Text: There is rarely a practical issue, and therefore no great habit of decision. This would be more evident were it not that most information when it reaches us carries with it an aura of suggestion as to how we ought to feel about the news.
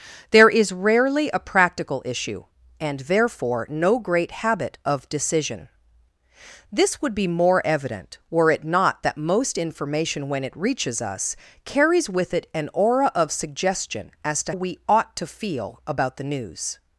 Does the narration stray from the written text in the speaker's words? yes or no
yes